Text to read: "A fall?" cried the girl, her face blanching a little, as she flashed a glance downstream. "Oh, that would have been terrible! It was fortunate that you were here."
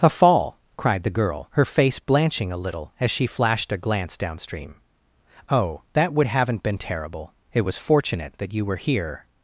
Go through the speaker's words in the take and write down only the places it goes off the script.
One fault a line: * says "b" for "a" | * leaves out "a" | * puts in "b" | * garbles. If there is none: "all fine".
* says "haven't" for "have"